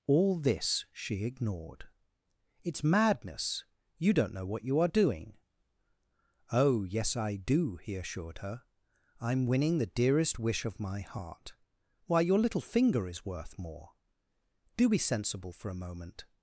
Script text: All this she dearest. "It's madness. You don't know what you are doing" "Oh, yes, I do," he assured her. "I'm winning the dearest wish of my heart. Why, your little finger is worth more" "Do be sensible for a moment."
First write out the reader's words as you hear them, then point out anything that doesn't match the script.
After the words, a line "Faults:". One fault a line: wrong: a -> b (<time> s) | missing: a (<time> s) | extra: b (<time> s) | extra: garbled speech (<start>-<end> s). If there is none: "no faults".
All this she ignored. "It's madness. You don't know what you are doing" "Oh, yes, I do," he assured her. "I'm winning the dearest wish of my heart. Why, your little finger is worth more" "Do be sensible for a moment."
Faults:
wrong: dearest -> ignored (1.2 s)